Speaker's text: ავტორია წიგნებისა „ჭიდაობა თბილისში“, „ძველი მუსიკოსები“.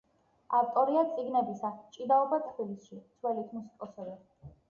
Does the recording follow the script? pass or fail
pass